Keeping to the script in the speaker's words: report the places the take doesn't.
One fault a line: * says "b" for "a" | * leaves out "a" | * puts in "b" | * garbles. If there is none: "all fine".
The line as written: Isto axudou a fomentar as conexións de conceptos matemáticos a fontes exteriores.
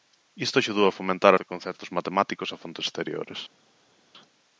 * leaves out "as conexións"